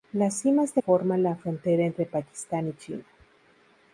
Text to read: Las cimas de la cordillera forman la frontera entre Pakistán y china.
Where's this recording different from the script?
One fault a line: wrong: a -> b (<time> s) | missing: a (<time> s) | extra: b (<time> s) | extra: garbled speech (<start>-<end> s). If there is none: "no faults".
missing: la cordillera (0.8 s)